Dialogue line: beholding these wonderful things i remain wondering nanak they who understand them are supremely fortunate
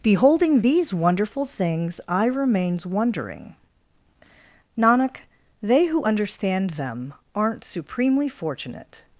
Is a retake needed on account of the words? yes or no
yes